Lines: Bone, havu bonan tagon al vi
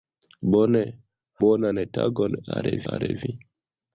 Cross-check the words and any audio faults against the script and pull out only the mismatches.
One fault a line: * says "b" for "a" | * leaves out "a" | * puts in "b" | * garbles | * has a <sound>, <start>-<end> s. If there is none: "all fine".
* leaves out "havu"
* puts in "al"